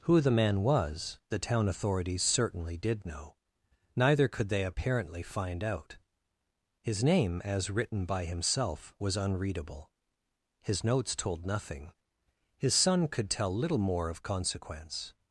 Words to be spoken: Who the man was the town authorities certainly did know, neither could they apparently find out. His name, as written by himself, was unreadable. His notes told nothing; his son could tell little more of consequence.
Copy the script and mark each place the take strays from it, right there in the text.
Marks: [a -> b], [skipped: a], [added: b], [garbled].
Who the man was the town authorities certainly did know, neither could they apparently find out. His name, as written by himself, was unreadable. His notes told nothing; his son could tell little more of consequence.